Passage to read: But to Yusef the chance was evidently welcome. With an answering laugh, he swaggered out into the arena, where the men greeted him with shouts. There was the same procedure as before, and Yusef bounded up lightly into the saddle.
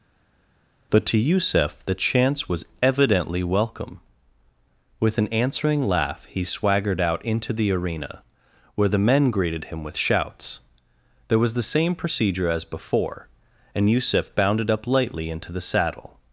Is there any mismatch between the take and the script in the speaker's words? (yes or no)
no